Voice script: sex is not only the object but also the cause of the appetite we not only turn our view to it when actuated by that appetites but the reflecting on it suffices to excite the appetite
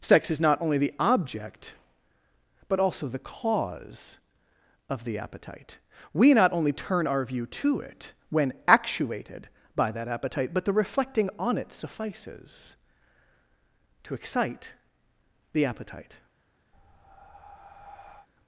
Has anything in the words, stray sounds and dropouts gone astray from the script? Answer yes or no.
yes